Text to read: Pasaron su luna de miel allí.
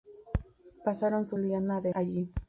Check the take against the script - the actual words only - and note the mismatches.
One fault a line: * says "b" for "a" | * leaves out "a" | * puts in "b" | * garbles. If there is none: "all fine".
* leaves out "miel"